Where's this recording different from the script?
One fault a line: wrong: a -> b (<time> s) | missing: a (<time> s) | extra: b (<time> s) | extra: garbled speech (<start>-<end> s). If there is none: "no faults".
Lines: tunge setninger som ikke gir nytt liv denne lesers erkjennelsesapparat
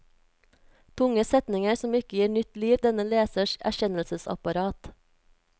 no faults